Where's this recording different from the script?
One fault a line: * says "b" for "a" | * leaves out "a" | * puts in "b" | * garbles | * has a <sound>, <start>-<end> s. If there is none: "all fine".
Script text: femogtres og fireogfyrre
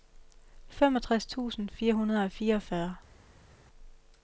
* puts in "tusind fire hundrede"